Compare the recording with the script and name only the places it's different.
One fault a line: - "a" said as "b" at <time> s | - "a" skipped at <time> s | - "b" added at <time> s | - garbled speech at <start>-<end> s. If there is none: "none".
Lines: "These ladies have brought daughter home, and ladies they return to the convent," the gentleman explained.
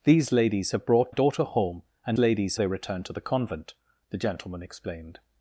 none